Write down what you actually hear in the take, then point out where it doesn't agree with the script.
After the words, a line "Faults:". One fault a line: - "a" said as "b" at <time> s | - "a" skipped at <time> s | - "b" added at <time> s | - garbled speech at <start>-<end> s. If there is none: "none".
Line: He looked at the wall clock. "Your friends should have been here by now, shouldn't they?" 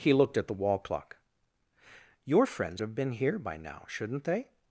He looked at the wall clock. "Your friends have been here by now, shouldn't they?"
Faults:
- "should" skipped at 2.8 s